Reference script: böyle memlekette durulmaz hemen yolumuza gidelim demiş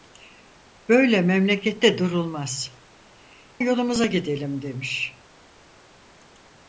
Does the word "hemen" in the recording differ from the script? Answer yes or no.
yes